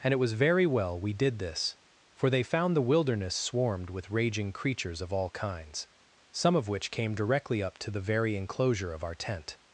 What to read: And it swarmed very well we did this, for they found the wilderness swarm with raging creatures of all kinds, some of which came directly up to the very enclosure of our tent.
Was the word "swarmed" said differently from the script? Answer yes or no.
yes